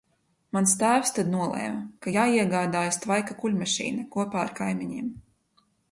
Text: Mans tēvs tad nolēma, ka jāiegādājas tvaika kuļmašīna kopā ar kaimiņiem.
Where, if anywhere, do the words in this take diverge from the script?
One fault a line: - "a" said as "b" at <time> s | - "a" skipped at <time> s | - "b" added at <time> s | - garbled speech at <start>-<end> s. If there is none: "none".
none